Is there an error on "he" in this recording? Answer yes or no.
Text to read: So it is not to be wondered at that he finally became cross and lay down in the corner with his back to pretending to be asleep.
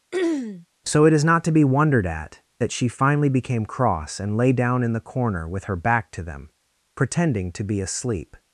yes